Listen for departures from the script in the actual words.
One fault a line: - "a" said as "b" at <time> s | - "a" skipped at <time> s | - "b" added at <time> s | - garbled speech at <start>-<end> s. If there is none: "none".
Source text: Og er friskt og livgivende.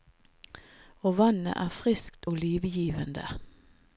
- "vannet" added at 1.2 s